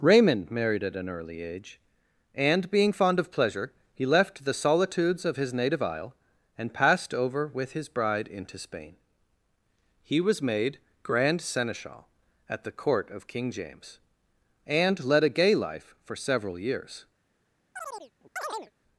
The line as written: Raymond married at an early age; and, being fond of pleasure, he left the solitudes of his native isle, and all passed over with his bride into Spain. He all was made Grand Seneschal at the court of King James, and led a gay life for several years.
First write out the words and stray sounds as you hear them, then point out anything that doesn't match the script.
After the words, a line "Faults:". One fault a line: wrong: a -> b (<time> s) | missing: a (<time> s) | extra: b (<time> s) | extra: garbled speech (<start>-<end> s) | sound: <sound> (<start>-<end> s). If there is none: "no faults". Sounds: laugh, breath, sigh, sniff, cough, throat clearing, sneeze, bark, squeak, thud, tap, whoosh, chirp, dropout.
Raymond married at an early age; and, being fond of pleasure, he left the solitudes of his native isle, and passed over with his bride into Spain. He was made Grand Seneschal at the court of King James, and led a gay life for several years.
Faults:
missing: all (6.7 s)
missing: all (10.2 s)
sound: chirp (17.7-18.7 s)